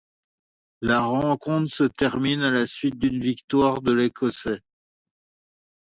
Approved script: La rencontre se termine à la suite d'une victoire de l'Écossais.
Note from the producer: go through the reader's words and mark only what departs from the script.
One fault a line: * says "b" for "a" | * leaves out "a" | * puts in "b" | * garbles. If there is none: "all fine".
all fine